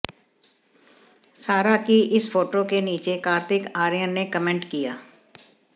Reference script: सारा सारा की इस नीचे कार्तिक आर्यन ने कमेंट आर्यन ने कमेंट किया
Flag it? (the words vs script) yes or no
yes